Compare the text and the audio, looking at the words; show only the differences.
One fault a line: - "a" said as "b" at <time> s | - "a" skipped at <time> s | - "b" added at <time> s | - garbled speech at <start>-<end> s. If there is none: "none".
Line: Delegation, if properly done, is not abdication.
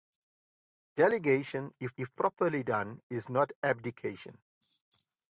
- "if" added at 2.0 s